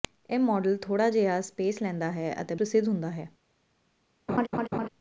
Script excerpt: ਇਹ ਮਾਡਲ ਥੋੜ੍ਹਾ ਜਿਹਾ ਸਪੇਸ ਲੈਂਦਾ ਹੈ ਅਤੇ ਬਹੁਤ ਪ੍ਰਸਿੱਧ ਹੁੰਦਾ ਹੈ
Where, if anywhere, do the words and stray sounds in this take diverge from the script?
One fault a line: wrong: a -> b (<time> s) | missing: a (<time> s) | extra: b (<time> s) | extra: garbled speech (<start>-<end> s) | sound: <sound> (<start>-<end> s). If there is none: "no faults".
missing: ਬਹੁਤ (2.5 s)
sound: laugh (4.3-4.9 s)